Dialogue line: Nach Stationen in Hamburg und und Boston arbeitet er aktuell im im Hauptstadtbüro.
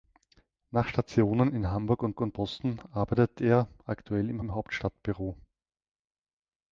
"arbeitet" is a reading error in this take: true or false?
false